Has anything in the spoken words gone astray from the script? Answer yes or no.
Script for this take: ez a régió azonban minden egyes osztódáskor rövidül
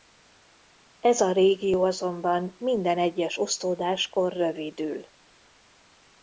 no